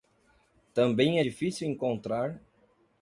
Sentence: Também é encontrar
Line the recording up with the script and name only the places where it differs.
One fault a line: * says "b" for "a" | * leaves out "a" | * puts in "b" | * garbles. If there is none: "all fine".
* puts in "difícil"